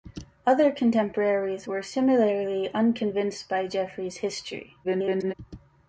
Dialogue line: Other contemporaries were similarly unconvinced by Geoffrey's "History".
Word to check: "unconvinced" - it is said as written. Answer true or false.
true